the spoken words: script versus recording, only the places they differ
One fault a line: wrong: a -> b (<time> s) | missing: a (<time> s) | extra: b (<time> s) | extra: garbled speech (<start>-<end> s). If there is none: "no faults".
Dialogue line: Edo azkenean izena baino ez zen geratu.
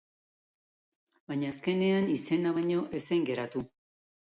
wrong: Edo -> Baina (1.3 s)